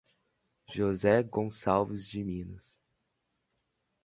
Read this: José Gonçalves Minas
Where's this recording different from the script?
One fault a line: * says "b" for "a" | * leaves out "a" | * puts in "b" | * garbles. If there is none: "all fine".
* puts in "de"